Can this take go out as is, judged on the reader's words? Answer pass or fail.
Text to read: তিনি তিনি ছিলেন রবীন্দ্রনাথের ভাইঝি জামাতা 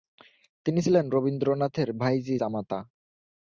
fail